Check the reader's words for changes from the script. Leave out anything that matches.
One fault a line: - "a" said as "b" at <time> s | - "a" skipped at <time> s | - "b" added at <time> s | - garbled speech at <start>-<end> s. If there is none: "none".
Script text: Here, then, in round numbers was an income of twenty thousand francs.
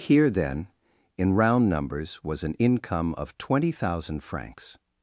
none